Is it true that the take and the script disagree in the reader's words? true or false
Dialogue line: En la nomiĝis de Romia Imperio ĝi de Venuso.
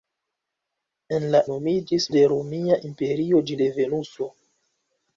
false